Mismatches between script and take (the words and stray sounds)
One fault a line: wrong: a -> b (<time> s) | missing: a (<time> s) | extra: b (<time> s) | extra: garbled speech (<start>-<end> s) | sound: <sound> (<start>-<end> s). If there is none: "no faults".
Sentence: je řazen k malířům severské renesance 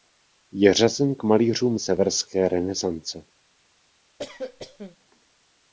sound: cough (4.2-5.0 s)